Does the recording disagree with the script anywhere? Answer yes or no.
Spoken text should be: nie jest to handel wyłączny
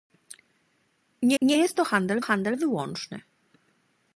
yes